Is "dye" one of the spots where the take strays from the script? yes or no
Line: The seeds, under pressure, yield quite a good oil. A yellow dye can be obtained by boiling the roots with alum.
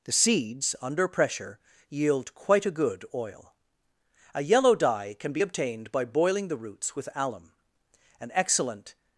no